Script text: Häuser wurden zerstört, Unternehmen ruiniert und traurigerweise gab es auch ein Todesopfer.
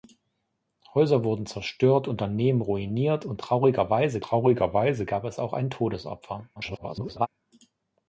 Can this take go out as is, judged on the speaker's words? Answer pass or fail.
fail